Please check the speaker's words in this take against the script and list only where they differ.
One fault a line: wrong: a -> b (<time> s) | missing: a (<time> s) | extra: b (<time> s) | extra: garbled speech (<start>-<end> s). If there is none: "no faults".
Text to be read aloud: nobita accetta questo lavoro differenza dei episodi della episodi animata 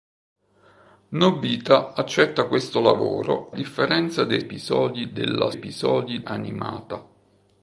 no faults